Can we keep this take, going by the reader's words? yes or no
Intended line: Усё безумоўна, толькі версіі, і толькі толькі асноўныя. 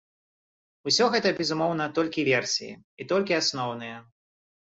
no